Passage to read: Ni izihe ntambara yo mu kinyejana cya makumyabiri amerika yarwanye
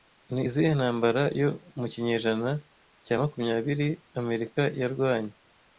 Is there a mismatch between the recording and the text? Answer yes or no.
no